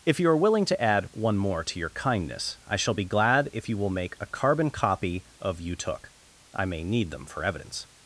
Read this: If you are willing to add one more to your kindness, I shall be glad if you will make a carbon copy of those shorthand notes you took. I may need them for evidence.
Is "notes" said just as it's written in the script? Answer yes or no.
no